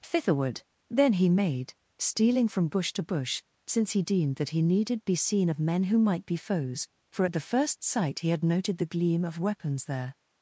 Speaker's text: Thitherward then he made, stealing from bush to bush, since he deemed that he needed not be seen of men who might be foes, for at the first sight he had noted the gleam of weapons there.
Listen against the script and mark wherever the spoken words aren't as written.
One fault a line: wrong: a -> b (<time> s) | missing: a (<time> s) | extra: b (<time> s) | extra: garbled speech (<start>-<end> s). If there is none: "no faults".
missing: not (5.0 s)